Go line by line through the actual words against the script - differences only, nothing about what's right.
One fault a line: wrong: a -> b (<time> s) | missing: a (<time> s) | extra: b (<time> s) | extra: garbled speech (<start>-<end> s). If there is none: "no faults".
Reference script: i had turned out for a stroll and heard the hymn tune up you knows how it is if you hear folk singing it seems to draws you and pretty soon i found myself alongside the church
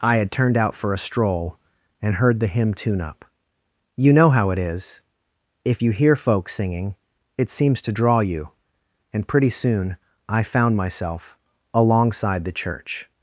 wrong: knows -> know (4.1 s)
wrong: draws -> draw (7.9 s)